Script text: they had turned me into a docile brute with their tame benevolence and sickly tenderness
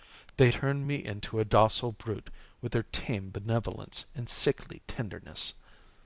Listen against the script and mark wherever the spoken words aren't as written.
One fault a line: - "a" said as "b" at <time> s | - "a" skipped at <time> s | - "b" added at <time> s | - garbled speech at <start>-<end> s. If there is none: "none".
- "had" skipped at 0.5 s